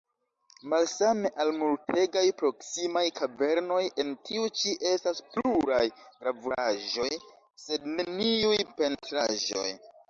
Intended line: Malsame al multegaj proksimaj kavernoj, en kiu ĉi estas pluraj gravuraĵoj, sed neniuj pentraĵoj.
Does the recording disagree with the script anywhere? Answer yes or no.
yes